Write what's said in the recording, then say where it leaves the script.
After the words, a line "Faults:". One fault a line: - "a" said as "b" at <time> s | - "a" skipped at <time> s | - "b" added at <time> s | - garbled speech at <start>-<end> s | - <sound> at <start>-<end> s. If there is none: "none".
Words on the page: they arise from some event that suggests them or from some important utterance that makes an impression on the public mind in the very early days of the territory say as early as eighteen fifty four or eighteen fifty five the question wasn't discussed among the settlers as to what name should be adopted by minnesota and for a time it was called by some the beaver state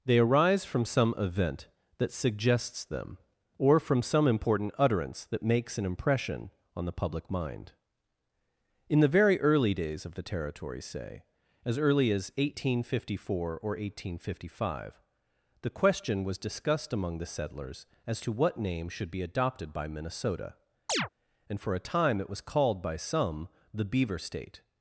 they arise from some event that suggests them or from some important utterance that makes an impression on the public mind in the very early days of the territory say as early as eighteen fifty four or eighteen fifty five the question was discussed among the settlers as to what name should be adopted by minnesota and for a time it was called by some the beaver state
Faults:
- "wasn't" said as "was" at 16.2 s
- chirp at 20.9-21.1 s